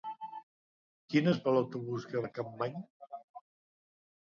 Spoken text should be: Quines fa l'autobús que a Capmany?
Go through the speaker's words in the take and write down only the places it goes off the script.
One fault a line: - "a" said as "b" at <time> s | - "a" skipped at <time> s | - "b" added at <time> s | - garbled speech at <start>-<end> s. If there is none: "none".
none